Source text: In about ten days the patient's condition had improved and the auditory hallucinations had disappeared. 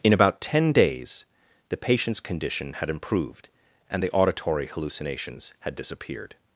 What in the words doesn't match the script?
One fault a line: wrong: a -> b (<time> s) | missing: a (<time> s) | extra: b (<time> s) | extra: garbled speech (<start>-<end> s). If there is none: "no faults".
no faults